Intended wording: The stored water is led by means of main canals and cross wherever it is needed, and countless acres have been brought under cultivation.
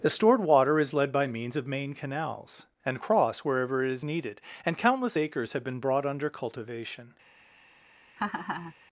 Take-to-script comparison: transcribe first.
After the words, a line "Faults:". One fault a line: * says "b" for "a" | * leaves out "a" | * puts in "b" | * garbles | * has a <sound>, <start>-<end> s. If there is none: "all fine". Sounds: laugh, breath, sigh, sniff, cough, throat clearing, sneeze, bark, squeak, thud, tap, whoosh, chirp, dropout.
The stored water is led by means of main canals and cross wherever it is needed, and countless acres have been brought under cultivation.
Faults:
* has a laugh, 8.2-8.7 s